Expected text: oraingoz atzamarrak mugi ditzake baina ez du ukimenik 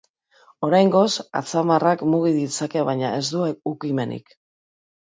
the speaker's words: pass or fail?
pass